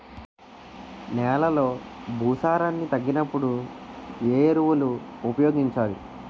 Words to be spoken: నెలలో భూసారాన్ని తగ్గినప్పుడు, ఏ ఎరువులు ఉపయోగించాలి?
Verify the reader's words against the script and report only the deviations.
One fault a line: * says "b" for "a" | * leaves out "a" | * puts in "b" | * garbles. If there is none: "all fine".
all fine